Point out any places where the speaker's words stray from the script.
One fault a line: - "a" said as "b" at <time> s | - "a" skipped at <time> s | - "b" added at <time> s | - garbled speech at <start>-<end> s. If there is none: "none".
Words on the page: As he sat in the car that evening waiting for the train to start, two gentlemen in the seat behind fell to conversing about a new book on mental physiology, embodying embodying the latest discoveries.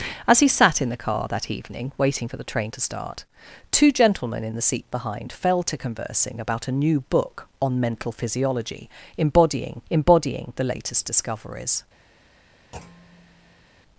none